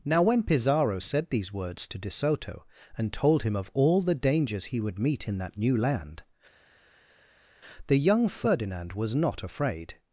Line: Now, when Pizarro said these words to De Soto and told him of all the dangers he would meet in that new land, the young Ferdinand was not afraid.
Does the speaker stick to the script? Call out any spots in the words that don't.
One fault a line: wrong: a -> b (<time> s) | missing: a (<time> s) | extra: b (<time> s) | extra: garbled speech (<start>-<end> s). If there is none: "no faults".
no faults